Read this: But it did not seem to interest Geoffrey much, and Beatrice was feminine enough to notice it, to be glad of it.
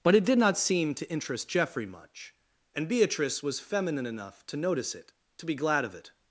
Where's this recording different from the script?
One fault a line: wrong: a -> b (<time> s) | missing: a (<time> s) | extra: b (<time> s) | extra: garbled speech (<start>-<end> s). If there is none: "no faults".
no faults